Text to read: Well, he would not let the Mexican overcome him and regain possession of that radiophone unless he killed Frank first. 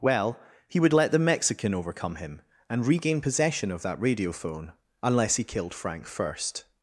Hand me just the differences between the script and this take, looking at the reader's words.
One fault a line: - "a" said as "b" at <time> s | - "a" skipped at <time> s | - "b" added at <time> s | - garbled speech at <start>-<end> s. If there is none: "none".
- "not" skipped at 0.9 s